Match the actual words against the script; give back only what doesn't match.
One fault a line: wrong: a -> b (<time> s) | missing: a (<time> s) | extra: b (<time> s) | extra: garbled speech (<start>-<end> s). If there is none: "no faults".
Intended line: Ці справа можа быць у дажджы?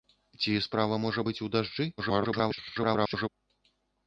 extra: garbled speech (2.0-3.3 s)